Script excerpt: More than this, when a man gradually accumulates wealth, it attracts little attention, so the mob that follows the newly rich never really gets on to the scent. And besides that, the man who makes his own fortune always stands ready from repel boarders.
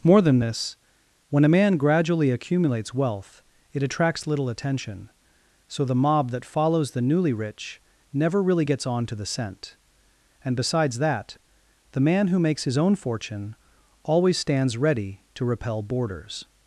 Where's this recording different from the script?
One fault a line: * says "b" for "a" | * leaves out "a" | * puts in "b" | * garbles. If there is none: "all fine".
* says "to" for "from"